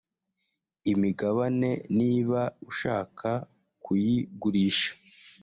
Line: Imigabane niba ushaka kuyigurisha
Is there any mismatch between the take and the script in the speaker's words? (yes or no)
no